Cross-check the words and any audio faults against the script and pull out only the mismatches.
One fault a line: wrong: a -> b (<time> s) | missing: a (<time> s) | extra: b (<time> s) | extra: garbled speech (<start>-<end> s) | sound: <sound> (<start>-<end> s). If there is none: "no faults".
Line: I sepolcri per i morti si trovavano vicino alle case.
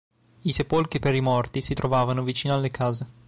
no faults